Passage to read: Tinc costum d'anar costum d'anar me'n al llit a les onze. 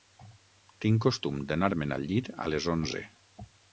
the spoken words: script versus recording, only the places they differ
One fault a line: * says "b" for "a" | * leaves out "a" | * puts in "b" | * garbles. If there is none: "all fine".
* leaves out "costum d'anar"